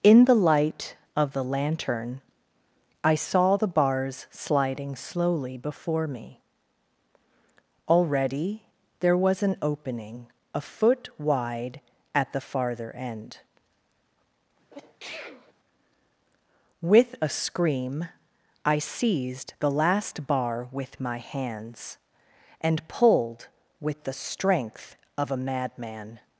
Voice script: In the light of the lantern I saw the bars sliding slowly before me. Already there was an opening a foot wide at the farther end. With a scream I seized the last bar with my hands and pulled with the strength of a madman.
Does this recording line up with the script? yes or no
yes